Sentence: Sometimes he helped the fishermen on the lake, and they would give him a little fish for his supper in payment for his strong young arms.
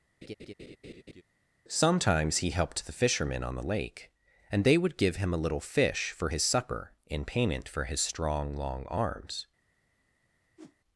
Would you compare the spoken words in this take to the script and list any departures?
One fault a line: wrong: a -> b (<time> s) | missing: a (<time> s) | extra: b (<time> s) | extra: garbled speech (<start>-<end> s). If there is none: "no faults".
wrong: young -> long (8.6 s)